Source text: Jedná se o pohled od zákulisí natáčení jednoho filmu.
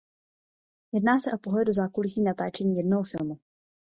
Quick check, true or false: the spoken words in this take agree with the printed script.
false